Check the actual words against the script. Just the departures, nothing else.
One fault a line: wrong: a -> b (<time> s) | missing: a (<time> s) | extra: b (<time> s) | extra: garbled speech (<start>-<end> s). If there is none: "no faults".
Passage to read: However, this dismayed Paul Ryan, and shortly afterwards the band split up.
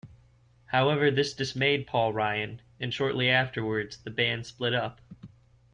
no faults